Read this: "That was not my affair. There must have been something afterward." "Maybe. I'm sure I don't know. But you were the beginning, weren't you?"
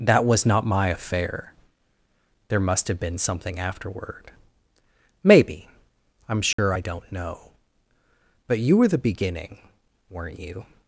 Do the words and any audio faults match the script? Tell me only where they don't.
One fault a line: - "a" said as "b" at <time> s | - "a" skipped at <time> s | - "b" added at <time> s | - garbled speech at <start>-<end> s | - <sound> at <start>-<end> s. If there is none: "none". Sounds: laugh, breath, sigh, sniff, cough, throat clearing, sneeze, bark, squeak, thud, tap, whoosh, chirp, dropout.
- dropout at 6.5-6.6 s